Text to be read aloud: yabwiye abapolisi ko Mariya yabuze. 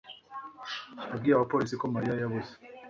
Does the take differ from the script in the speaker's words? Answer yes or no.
no